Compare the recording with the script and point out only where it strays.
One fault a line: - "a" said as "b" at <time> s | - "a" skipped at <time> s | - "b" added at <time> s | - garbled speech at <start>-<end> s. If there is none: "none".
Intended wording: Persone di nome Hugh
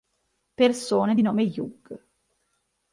none